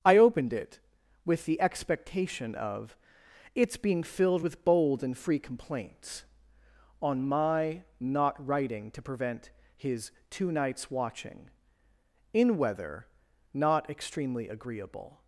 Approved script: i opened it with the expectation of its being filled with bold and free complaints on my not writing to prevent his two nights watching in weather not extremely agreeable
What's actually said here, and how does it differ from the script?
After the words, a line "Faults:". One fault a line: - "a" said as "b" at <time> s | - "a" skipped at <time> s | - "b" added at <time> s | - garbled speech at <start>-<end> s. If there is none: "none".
i opened it with the expectation of its being filled with bold and free complaints on my not writing to prevent his two nights watching in weather not extremely agreeable
Faults:
none